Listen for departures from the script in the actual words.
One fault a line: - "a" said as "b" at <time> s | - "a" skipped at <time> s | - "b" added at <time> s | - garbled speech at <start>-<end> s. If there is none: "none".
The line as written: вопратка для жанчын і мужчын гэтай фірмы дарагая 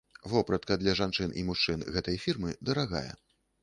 none